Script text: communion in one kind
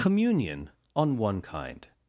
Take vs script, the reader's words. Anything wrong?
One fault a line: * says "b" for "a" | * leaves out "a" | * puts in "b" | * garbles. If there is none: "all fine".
* says "on" for "in"